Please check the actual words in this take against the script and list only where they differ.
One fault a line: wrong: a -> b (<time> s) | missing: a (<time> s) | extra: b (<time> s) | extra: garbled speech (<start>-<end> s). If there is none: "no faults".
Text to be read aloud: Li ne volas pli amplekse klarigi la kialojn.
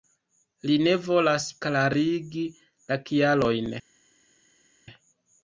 missing: pli amplekse (1.4 s)